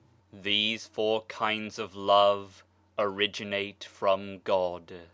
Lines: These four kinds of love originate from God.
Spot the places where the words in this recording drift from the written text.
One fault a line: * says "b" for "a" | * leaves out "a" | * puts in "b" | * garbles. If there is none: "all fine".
all fine